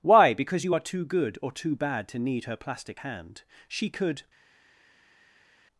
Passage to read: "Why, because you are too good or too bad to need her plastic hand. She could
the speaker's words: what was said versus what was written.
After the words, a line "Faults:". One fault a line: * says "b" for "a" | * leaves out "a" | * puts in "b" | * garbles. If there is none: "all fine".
"Why, because you are too good or too bad to need her plastic hand. She could
Faults:
all fine